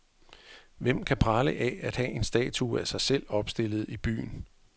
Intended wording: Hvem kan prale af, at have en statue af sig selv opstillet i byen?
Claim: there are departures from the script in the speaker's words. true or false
false